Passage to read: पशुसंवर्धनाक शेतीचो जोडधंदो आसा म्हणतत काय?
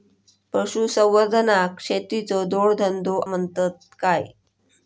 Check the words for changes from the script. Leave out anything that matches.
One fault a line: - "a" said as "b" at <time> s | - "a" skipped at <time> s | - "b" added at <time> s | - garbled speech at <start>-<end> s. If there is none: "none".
- "आसा" skipped at 3.2 s